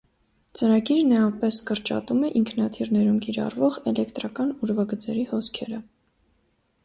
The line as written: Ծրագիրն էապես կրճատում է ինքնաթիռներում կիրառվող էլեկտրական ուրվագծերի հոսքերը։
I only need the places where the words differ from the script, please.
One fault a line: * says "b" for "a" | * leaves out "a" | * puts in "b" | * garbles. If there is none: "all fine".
all fine